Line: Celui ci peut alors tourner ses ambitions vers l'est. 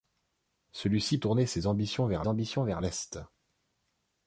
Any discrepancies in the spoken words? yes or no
yes